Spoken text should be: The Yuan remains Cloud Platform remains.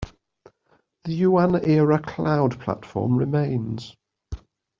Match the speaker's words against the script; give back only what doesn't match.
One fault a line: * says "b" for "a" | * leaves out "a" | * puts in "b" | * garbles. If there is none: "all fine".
* says "era" for "remains"